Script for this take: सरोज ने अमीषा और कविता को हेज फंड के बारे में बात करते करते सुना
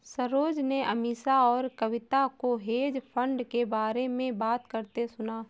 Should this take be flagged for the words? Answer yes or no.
yes